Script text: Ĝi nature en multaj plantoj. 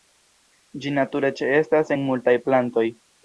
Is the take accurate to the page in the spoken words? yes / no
no